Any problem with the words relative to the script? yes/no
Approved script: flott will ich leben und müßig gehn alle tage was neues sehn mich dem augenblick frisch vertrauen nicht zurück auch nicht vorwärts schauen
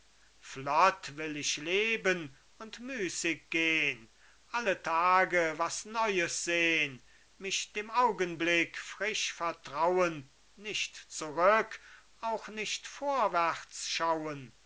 no